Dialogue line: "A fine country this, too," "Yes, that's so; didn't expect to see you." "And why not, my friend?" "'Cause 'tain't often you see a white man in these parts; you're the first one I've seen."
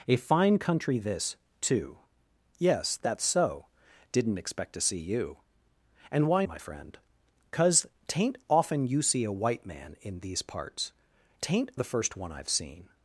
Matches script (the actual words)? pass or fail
fail